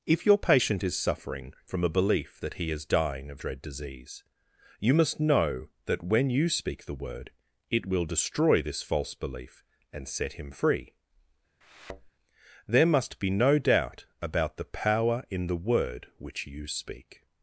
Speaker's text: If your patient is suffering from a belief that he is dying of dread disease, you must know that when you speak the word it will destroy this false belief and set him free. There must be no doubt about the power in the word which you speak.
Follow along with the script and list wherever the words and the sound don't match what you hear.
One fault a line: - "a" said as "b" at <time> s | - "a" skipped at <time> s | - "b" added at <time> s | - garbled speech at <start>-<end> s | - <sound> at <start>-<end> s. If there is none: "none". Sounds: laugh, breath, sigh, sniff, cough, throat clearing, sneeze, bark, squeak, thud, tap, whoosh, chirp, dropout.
- thud at 11.6-12.1 s